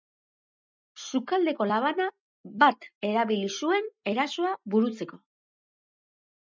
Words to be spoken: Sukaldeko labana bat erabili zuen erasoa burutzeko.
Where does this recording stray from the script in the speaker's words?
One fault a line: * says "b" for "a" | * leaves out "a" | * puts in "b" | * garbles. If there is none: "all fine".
all fine